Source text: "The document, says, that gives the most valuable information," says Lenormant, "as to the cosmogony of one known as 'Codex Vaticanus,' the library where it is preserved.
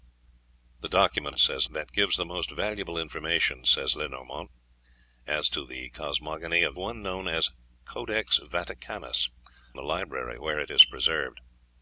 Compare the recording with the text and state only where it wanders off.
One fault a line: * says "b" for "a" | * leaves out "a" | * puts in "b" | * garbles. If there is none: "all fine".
all fine